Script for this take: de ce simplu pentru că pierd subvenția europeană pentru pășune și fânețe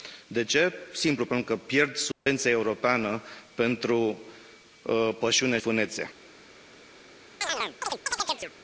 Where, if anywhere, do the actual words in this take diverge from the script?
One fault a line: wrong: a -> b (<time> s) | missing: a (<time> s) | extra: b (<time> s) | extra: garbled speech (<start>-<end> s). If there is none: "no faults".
missing: și (5.6 s)